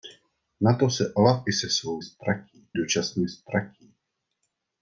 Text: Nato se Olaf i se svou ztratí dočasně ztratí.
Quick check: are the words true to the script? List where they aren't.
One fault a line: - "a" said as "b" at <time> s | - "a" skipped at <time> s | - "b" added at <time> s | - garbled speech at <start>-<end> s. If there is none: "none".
none